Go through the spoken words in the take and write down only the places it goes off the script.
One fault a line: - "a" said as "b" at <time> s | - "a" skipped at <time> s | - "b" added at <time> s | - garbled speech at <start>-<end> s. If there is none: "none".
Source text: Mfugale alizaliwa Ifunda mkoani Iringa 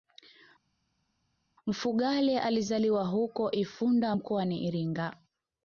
- "huko" added at 3.1 s